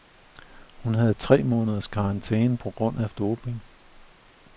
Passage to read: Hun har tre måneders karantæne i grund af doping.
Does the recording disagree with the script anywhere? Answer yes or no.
yes